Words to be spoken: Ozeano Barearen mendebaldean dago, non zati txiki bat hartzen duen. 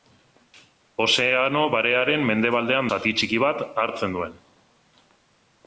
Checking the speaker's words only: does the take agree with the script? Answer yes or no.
no